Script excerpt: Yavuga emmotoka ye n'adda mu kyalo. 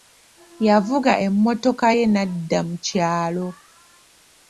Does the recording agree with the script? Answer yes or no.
yes